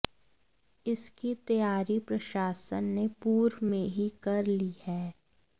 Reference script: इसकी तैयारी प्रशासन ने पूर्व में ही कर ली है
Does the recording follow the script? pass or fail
pass